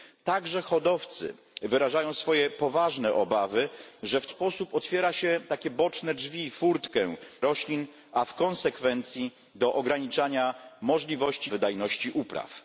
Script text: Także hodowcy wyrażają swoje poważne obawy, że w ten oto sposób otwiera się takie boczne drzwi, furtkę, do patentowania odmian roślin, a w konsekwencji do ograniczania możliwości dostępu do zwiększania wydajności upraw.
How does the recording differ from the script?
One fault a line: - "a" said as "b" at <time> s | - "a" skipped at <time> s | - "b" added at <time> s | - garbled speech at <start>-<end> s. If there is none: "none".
- "ten oto" skipped at 4.3 s
- "do patentowania odmian" skipped at 7.1 s
- "dostępu do zwiększania" skipped at 11.5 s